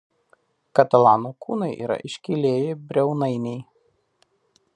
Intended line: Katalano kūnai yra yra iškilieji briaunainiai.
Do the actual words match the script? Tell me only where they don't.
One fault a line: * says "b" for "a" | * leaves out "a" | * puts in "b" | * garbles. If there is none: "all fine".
* leaves out "yra"